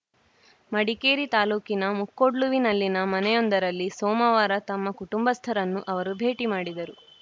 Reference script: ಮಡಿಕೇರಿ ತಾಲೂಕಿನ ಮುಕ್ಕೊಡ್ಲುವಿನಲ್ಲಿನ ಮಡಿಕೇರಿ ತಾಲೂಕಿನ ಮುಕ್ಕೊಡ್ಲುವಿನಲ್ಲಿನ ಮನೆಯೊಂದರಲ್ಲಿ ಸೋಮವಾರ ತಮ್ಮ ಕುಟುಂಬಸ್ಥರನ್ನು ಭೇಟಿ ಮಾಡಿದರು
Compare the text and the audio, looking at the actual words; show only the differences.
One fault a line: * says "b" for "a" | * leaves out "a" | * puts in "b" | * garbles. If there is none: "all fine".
* leaves out "ಮಡಿಕೇರಿ ತಾಲೂಕಿನ ಮುಕ್ಕೊಡ್ಲುವಿನಲ್ಲಿನ"
* puts in "ಅವರು"